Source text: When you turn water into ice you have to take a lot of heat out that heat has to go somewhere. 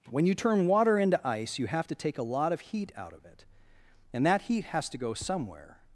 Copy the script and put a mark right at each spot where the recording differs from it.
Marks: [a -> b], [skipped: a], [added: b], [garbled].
When you turn water into ice you have to take a lot of heat out [added: of it and] that heat has to go somewhere.